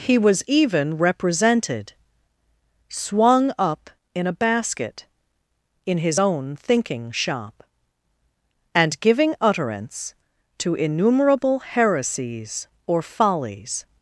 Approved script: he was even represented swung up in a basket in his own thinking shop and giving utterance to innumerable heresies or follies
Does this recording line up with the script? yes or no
yes